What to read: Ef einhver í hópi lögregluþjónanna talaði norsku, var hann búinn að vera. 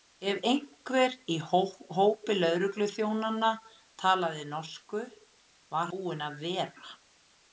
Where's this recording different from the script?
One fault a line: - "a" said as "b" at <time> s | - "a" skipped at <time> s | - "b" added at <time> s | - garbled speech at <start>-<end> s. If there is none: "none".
- "hann" skipped at 5.9 s